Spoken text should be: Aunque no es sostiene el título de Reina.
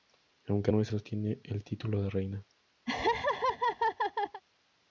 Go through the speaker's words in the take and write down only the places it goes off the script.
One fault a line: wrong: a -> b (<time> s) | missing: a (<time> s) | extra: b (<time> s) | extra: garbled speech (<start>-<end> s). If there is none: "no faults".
no faults